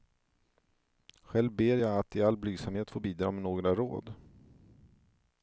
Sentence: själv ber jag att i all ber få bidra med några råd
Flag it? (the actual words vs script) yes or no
yes